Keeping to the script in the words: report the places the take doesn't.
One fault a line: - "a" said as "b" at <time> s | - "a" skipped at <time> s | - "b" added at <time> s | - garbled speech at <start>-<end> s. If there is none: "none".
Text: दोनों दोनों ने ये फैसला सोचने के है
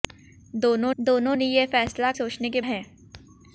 none